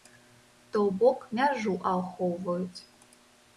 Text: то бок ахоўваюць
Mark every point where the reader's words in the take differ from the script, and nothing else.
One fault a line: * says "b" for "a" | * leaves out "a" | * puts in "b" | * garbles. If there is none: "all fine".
* puts in "мяжу"